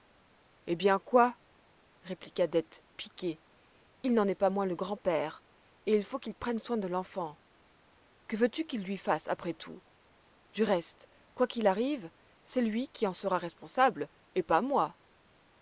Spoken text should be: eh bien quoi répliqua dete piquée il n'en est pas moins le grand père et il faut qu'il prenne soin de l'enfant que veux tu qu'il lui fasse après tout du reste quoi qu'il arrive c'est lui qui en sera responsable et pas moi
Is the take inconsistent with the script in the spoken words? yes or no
no